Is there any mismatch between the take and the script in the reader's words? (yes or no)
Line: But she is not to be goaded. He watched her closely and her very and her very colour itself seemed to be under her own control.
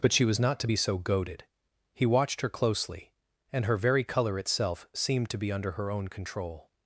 yes